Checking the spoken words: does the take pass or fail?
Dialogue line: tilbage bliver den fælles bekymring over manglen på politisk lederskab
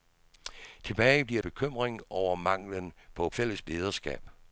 fail